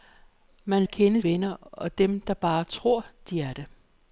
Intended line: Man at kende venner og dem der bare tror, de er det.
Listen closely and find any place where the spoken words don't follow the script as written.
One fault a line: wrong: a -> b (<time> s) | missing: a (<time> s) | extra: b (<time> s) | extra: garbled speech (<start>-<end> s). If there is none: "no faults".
no faults